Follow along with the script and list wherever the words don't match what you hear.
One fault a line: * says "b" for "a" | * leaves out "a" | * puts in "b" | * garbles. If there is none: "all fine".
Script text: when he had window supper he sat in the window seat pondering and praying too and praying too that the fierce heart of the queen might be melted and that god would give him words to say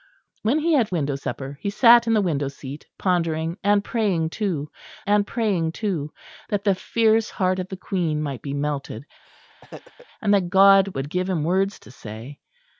all fine